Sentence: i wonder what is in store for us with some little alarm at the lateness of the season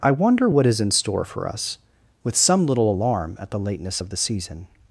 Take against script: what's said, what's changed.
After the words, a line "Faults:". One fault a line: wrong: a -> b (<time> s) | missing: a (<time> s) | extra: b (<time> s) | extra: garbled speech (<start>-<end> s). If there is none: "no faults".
i wonder what is in store for us with some little alarm at the lateness of the season
Faults:
no faults